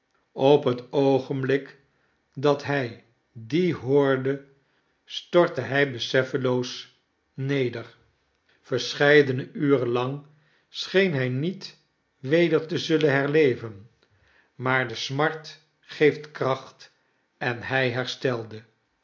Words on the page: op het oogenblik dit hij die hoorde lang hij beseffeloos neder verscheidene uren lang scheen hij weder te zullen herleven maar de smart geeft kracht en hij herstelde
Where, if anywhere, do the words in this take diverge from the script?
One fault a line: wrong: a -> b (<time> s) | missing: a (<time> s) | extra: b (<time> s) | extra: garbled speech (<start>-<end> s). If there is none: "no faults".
wrong: dit -> dat (2.3 s)
wrong: lang -> stortte (5.0 s)
extra: niet (11.3 s)